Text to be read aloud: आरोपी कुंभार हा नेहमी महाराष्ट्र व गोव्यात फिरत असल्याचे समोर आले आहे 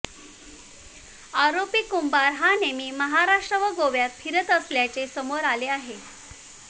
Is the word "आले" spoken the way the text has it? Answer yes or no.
yes